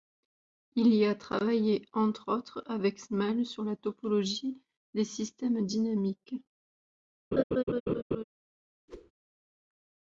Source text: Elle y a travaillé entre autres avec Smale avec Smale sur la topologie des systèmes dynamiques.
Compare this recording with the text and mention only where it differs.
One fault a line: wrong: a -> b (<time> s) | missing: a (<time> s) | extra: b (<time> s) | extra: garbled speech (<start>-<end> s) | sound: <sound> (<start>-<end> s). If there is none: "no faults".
wrong: Elle -> Il (0.8 s)
missing: avec Smale (3.5 s)
sound: laugh (7.3-8.2 s)
sound: whoosh (8.9-9.1 s)